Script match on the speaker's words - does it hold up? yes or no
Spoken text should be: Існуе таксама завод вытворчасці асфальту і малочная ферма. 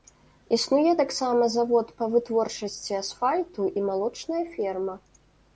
no